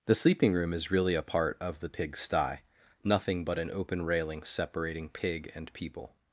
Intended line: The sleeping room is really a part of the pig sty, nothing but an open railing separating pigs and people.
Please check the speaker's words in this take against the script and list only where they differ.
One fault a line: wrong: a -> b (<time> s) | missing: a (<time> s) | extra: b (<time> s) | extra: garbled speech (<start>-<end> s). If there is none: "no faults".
wrong: pigs -> pig (5.1 s)